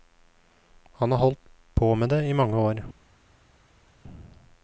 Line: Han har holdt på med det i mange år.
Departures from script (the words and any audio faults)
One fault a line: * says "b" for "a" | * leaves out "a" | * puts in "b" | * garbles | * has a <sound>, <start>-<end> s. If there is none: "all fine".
all fine